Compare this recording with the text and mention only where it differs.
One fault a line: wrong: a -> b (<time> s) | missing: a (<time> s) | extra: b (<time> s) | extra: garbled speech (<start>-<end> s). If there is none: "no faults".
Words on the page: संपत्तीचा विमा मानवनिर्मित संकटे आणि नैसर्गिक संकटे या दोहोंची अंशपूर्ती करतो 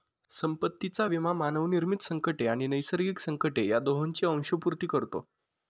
no faults